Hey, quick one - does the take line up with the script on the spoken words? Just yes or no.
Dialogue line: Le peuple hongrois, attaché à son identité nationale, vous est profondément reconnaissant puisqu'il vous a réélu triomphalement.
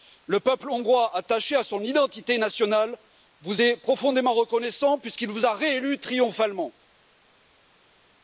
yes